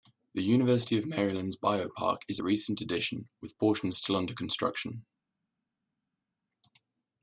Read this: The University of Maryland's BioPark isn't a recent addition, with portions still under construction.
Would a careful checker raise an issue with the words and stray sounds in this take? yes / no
yes